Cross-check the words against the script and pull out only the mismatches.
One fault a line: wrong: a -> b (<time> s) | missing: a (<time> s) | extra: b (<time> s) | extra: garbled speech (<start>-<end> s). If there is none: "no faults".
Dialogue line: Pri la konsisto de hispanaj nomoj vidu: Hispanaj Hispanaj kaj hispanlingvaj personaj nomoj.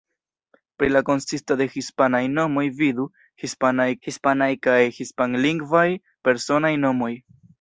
no faults